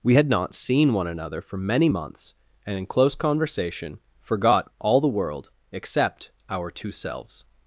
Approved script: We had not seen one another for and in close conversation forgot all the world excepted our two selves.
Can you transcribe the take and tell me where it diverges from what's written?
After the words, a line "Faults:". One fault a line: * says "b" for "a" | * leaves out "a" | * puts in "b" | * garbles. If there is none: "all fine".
We had not seen one another for many months, and in close conversation forgot all the world except our two selves.
Faults:
* puts in "many months"
* says "except" for "excepted"